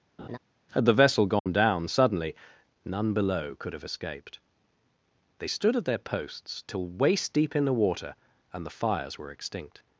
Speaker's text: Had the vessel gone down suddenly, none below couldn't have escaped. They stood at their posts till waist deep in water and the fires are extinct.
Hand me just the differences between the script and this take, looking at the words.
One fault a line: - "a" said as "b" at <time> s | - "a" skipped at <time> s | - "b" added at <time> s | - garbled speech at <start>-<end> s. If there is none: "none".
- "couldn't" said as "could" at 3.6 s
- "the" added at 7.6 s
- "are" said as "were" at 9.2 s